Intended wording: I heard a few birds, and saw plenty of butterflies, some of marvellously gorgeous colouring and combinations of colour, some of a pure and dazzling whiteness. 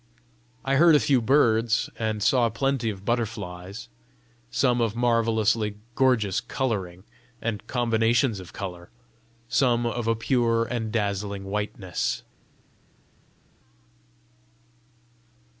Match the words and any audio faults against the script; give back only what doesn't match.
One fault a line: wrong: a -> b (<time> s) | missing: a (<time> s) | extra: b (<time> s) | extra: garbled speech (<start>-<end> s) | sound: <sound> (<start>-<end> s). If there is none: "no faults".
no faults